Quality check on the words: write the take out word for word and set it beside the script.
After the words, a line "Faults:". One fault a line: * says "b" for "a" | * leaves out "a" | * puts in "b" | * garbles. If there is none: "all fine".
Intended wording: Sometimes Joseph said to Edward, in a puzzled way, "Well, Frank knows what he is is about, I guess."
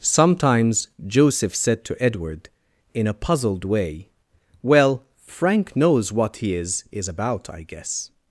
Sometimes Joseph said to Edward, in a puzzled way, "Well, Frank knows what he is is about, I guess."
Faults:
all fine